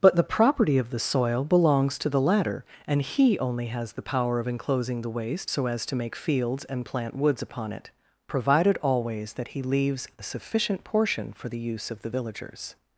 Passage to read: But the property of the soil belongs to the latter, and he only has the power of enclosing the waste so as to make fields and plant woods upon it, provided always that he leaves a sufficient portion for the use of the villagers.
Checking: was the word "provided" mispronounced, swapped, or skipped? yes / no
no